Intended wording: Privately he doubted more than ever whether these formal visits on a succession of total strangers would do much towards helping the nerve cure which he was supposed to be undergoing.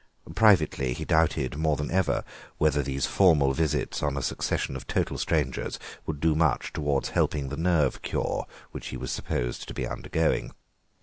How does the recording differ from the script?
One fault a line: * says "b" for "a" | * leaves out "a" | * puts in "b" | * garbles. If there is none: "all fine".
all fine